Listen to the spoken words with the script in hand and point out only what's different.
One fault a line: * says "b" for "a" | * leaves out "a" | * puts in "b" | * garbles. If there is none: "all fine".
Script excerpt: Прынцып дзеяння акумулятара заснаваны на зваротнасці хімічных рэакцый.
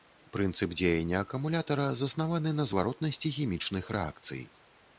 all fine